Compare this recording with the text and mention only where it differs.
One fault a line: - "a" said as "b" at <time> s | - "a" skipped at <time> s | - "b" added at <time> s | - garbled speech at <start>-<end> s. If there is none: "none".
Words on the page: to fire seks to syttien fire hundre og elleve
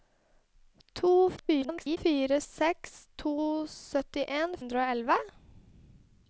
- garbled speech at 1.4-2.0 s
- "fire" skipped at 4.6 s